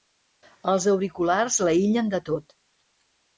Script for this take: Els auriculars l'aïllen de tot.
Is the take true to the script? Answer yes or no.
yes